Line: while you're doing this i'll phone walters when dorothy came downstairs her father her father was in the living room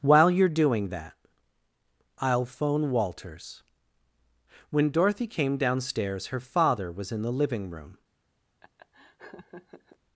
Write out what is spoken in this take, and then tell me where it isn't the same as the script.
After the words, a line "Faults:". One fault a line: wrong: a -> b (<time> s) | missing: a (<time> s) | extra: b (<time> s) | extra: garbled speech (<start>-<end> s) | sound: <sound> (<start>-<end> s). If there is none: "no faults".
while you're doing that i'll phone walters when dorothy came downstairs her father was in the living room
Faults:
wrong: this -> that (0.9 s)
missing: her father (6.9 s)
sound: laugh (8.6-10.0 s)